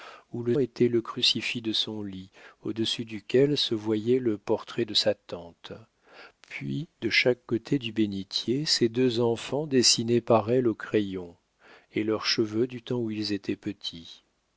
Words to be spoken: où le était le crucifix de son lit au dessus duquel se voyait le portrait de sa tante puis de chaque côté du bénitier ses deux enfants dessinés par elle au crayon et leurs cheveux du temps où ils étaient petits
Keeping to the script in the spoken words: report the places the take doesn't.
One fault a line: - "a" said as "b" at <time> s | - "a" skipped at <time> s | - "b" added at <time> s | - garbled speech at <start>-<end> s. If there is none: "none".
none